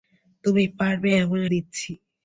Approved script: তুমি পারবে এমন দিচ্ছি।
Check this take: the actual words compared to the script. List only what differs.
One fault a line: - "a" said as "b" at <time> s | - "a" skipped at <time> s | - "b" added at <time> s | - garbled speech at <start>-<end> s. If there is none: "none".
none